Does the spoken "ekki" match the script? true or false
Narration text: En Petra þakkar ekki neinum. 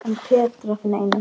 false